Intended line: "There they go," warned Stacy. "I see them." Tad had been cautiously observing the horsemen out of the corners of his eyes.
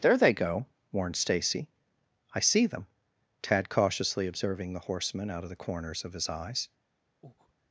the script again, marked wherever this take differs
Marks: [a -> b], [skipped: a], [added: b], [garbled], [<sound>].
"There they go," warned Stacy. "I see them." Tad [skipped: had been] cautiously observing the horsemen out of the corners of his eyes. [breath]